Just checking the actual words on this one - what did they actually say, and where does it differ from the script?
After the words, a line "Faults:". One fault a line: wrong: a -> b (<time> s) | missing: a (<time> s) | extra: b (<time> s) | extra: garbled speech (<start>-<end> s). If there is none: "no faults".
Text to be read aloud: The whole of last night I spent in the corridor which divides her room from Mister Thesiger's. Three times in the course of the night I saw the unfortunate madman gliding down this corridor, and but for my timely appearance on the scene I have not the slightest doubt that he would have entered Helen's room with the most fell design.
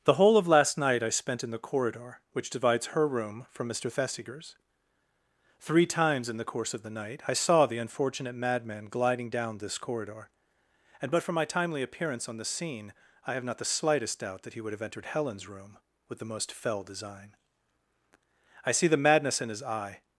The whole of last night I spent in the corridor which divides her room from Mister Thesiger's. Three times in the course of the night I saw the unfortunate madman gliding down this corridor, and but for my timely appearance on the scene I have not the slightest doubt that he would have entered Helen's room with the most fell design. I see the madness in his eye
Faults:
extra: I see the madness in his eye (18.7 s)